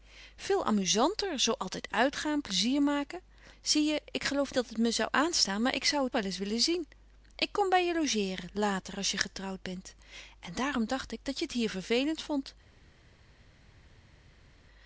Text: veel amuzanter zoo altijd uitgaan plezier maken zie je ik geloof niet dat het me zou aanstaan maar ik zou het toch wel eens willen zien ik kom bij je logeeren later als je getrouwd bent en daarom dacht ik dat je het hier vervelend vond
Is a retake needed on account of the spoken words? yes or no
yes